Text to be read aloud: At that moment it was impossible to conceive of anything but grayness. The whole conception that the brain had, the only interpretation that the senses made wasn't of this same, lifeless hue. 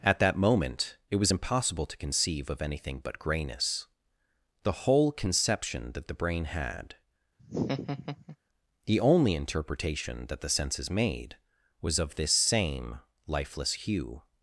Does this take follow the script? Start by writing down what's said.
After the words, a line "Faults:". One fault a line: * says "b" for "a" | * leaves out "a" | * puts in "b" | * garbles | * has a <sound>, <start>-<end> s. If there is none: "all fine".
At that moment it was impossible to conceive of anything but grayness. The whole conception that the brain had, the only interpretation that the senses made was of this same, lifeless hue.
Faults:
* has a laugh, 7.4-8.4 s
* says "was" for "wasn't"